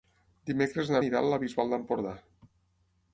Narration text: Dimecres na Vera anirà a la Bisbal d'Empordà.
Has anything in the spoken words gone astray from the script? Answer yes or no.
yes